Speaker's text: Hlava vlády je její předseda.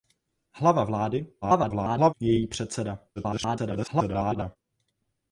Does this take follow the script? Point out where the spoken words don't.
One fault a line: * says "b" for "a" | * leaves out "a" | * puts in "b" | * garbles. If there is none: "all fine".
* garbles
* garbles